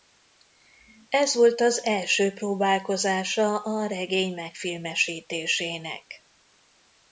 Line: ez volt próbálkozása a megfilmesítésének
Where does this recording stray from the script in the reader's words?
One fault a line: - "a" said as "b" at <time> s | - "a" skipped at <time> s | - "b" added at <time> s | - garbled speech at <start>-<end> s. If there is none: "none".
- "az első" added at 1.6 s
- "regény" added at 3.9 s